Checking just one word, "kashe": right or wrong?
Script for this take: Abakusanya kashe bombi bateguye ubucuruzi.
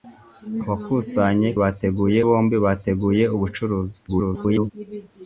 wrong